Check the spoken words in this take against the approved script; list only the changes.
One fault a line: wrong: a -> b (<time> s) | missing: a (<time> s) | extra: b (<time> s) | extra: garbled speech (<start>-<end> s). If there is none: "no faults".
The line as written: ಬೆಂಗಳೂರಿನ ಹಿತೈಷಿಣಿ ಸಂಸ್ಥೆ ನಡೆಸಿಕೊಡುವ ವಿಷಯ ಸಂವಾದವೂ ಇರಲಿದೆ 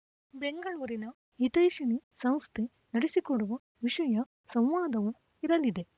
no faults